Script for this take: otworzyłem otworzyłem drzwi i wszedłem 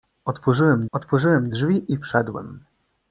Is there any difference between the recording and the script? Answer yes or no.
no